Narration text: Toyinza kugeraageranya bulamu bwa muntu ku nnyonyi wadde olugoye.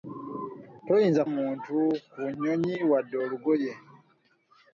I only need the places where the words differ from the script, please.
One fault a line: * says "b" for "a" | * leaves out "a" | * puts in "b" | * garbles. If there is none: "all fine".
* leaves out "kugeraageranya bulamu bwa"